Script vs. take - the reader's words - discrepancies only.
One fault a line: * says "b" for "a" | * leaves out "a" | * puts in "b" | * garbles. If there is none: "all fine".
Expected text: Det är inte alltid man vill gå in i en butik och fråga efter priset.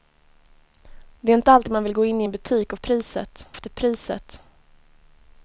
* says "priset" for "fråga"